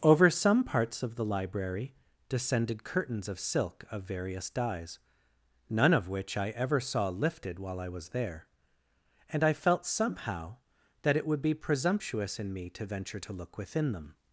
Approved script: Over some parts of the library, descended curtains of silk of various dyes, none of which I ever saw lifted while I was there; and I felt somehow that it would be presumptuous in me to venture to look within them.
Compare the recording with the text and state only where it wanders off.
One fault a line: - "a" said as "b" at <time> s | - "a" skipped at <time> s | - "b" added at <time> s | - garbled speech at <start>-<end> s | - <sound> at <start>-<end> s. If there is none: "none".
none